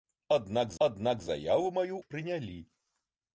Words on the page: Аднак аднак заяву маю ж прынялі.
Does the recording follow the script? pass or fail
pass